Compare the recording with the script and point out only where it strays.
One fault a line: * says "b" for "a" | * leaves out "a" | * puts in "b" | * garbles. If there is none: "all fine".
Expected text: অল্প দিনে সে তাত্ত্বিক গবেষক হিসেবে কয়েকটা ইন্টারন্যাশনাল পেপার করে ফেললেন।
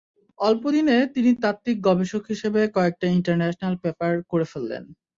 * says "তিনি" for "সে"